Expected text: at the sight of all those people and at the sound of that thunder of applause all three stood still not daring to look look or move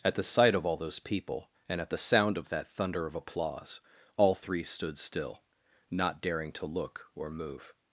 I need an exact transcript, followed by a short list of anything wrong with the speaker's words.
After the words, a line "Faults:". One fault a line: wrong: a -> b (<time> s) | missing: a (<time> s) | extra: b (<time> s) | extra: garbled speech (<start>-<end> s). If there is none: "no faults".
at the sight of all those people and at the sound of that thunder of applause all three stood still not daring to look or move
Faults:
missing: look (7.1 s)